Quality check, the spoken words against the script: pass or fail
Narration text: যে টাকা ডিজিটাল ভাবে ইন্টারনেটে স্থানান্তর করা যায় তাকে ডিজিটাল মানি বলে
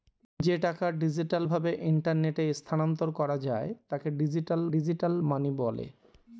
fail